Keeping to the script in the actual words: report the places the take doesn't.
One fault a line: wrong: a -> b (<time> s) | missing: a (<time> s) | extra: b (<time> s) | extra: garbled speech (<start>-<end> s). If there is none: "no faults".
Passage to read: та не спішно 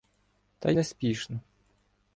no faults